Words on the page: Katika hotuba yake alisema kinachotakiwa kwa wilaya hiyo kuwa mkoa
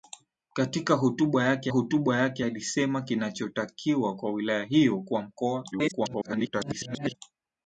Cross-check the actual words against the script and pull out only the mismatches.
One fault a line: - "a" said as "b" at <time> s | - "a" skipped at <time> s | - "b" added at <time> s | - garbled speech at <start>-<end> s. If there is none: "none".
- "hotuba yake" added at 1.7 s
- garbled speech at 5.7-7.2 s